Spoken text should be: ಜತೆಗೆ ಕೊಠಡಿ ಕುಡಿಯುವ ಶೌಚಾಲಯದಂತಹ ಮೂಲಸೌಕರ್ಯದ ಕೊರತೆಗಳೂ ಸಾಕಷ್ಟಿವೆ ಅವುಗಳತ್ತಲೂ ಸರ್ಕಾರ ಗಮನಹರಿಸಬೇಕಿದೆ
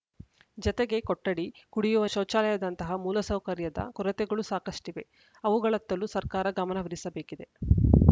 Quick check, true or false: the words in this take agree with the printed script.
true